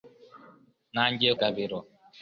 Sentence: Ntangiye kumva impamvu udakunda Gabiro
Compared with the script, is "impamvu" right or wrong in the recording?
wrong